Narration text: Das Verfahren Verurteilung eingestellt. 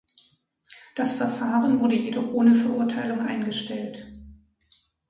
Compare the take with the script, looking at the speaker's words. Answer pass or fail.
fail